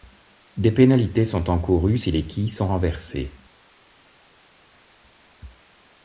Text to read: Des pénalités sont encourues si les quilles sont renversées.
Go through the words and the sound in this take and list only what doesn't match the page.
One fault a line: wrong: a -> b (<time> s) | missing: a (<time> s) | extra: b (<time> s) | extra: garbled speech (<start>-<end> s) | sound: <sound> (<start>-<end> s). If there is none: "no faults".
no faults